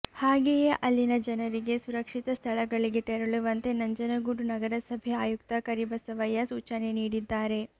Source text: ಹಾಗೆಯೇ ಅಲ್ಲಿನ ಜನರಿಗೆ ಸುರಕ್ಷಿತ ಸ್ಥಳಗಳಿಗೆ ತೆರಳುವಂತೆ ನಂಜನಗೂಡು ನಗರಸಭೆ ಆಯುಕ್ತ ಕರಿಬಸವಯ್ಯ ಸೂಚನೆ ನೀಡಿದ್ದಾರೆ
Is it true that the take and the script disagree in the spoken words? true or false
false